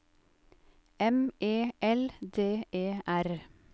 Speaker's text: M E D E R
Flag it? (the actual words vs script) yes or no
yes